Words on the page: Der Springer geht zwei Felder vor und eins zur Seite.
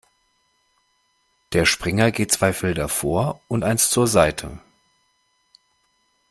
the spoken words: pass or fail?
pass